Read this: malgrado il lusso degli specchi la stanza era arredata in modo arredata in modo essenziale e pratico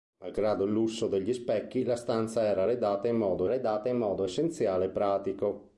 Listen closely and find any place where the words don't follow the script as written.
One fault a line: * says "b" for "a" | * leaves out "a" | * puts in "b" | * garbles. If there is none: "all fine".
all fine